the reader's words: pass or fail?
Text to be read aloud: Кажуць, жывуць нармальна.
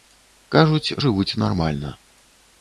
pass